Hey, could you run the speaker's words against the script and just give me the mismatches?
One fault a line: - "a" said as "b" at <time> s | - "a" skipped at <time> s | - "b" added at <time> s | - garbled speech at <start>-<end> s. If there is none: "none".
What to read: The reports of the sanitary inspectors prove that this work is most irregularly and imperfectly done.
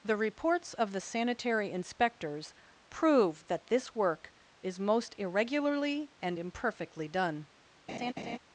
none